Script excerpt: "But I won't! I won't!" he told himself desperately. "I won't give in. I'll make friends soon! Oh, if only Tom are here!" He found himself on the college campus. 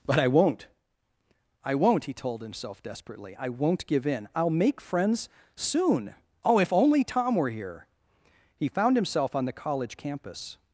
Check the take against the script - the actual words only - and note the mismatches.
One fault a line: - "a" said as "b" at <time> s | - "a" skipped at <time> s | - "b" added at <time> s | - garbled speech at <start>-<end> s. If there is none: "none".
- "are" said as "were" at 7.4 s